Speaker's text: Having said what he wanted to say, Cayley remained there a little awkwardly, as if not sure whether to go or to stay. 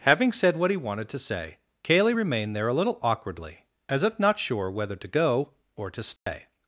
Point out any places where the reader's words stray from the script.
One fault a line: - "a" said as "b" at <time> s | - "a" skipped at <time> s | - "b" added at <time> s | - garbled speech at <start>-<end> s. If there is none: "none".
none